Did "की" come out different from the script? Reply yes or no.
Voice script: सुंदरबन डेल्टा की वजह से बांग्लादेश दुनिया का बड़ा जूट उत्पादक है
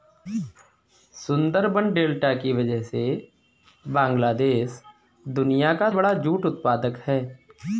no